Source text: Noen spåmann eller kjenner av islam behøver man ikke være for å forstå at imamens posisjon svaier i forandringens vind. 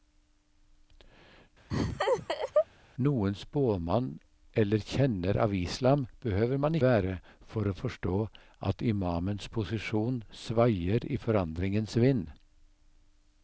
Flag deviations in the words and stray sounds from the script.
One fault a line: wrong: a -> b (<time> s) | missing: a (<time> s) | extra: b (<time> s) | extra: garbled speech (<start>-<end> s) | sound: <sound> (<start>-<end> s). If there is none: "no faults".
sound: laugh (1.7-2.7 s)
missing: ikke (6.8 s)